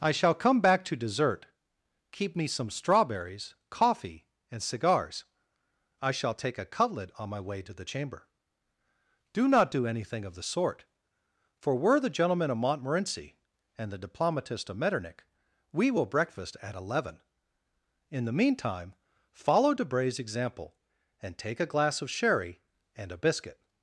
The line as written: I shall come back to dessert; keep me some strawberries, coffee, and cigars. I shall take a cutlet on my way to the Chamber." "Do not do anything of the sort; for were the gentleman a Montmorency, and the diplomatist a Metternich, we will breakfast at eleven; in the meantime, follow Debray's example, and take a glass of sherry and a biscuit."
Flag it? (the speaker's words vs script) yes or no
yes